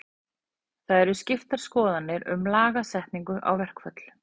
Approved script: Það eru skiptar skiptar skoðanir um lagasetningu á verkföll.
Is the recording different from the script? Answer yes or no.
yes